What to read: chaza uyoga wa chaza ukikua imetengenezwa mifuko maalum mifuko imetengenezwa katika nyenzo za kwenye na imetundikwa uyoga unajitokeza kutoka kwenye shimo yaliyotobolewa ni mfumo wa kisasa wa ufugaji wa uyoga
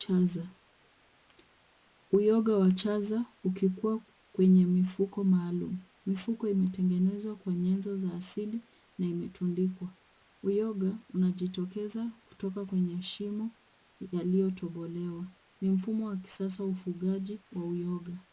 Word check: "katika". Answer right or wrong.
wrong